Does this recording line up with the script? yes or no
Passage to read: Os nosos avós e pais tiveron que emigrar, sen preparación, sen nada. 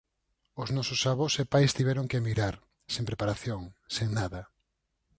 yes